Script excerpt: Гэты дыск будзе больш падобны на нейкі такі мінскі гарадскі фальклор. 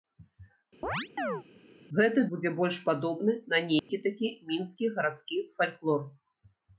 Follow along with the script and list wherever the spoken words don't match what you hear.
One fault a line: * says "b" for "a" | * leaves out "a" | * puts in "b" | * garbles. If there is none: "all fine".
* leaves out "дыск"